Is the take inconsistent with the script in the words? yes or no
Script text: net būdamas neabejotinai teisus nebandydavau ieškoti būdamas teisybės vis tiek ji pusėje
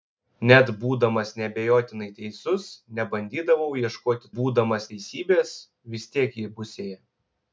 no